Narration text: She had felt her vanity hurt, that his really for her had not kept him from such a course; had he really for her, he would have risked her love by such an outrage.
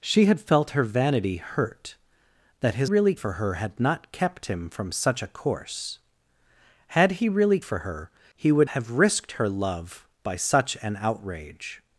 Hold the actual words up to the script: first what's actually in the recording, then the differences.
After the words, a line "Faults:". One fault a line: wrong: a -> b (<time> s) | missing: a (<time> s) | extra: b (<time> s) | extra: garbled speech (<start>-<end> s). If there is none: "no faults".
She had felt her vanity hurt, that his really for her had not kept him from such a course; had he really for her, he would have risked her love by such an outrage.
Faults:
no faults